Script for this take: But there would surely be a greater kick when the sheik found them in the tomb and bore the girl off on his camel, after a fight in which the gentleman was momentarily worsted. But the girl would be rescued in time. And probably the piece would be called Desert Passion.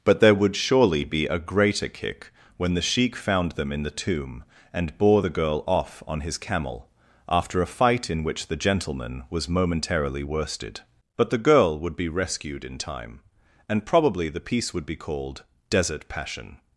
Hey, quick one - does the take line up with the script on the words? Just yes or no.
yes